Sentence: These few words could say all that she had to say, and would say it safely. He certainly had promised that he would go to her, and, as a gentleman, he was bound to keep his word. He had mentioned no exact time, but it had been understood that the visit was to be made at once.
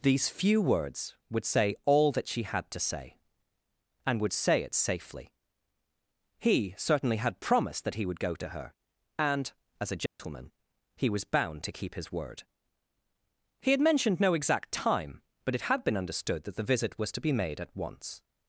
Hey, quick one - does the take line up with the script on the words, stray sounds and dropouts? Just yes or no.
no